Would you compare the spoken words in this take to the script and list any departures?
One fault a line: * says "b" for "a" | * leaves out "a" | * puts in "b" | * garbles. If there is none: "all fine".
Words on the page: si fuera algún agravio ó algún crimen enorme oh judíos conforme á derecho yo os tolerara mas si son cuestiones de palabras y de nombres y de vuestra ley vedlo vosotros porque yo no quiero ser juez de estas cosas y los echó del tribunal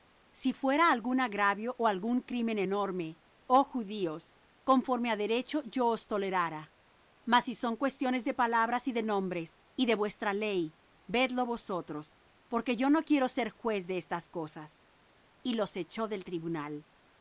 all fine